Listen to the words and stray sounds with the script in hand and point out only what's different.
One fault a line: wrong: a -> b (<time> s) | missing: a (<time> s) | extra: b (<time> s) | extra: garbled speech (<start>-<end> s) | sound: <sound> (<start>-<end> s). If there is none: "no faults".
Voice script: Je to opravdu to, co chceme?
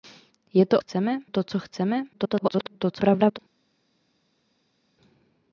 wrong: opravdu -> chceme (0.7 s)
extra: garbled speech (2.1-3.4 s)